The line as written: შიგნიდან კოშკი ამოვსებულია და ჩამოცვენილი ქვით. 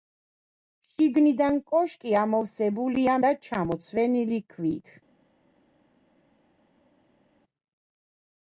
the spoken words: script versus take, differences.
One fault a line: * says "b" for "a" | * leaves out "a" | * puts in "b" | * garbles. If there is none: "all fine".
all fine